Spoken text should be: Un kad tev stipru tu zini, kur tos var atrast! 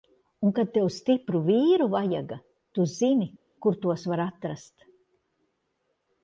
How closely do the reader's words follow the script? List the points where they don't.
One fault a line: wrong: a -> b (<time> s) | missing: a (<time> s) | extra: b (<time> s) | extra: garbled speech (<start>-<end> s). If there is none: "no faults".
extra: vīru vajaga (1.5 s)